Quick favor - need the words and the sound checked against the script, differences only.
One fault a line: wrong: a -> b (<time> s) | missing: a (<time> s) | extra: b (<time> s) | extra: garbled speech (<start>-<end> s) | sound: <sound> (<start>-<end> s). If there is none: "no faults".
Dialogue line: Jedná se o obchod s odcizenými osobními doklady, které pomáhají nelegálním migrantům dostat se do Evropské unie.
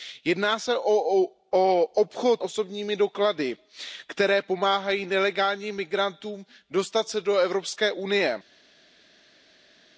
missing: s odcizenými (2.4 s)